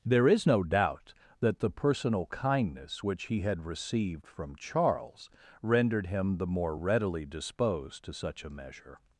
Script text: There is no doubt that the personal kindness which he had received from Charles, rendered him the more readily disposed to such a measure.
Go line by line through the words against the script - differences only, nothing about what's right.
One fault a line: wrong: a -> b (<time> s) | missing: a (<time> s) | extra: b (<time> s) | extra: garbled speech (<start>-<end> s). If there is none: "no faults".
no faults